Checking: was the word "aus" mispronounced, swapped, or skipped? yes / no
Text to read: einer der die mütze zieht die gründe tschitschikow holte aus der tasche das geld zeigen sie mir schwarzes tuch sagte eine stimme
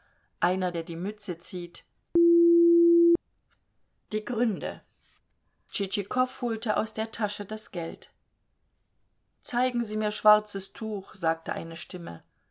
no